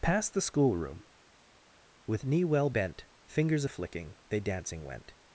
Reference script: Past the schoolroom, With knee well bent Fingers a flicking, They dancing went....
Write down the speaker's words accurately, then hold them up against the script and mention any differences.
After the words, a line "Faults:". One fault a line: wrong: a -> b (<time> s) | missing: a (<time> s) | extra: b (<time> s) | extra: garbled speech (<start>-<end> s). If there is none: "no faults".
Past the schoolroom, With knee well bent Fingers a flicking, They dancing went....
Faults:
no faults